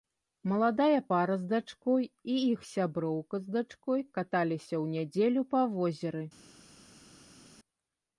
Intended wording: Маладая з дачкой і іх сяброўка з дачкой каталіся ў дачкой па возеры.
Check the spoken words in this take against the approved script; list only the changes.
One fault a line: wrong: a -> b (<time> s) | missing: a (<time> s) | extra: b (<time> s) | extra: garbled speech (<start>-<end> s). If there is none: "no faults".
extra: пара (1.1 s)
wrong: дачкой -> нядзелю (4.9 s)